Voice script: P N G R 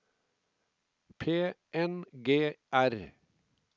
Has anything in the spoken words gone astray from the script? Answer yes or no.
no